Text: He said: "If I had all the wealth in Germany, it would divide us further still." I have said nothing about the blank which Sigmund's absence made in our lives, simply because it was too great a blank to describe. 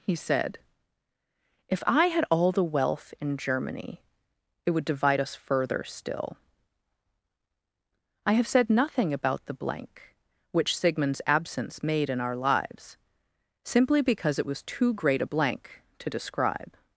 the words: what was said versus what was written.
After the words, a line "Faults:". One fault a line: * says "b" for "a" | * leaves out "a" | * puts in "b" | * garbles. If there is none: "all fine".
He said: "If I had all the wealth in Germany, it would divide us further still." I have said nothing about the blank which Sigmund's absence made in our lives, simply because it was too great a blank to describe.
Faults:
all fine